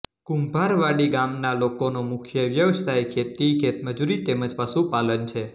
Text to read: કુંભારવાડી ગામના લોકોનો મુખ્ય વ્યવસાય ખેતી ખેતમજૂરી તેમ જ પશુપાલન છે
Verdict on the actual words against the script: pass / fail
pass